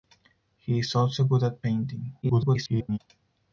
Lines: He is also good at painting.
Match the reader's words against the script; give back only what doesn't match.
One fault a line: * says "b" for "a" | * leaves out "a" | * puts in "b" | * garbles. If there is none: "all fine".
* garbles